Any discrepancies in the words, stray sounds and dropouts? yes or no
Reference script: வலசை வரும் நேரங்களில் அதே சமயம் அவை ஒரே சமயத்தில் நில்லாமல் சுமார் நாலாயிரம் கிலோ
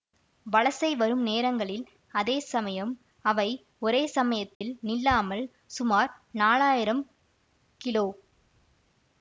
yes